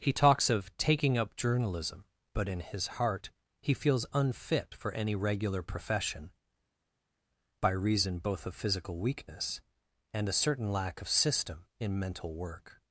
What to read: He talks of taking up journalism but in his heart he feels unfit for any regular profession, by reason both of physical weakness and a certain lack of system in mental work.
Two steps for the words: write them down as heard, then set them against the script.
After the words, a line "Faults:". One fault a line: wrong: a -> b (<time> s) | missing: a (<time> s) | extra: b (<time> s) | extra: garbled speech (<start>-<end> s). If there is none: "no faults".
He talks of taking up journalism but in his heart he feels unfit for any regular profession, by reason both of physical weakness and a certain lack of system in mental work.
Faults:
no faults